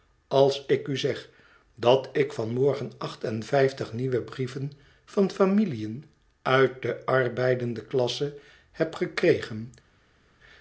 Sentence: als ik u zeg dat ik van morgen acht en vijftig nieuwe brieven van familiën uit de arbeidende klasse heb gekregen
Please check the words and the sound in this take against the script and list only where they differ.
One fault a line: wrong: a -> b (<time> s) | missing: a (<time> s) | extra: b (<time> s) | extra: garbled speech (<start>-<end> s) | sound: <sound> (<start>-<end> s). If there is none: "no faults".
no faults